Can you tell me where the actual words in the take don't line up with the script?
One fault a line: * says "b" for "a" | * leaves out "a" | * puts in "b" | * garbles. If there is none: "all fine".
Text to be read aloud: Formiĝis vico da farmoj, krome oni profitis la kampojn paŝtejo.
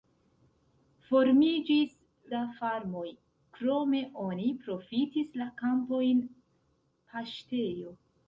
* leaves out "vico"